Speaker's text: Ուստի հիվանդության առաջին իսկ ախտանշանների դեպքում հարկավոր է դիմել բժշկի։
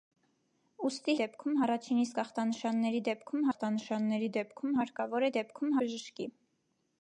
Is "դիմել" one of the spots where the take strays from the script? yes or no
yes